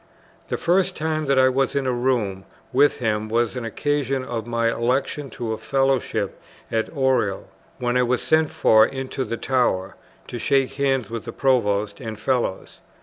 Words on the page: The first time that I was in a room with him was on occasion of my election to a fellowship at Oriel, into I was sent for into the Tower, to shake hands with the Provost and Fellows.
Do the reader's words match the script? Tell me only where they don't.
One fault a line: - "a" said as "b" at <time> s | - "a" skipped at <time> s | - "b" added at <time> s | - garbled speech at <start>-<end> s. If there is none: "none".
- "into" said as "when" at 7.8 s